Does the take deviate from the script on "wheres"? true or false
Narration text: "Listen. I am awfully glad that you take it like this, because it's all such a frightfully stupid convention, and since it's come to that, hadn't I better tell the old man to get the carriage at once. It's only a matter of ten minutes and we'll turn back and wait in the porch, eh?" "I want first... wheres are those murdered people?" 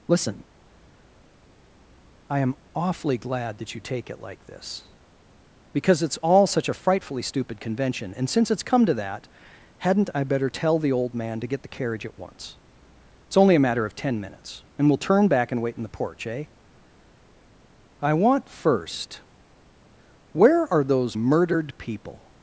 true